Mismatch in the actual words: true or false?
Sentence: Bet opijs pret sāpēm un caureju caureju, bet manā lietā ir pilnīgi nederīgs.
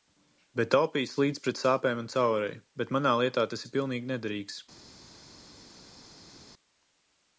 true